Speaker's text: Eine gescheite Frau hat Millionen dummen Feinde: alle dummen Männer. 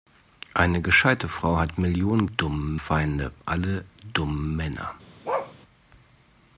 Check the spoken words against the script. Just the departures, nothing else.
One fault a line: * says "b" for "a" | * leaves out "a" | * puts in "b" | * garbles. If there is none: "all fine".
all fine